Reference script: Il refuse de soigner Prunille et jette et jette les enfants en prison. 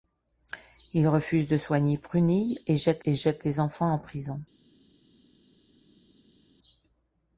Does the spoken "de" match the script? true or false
true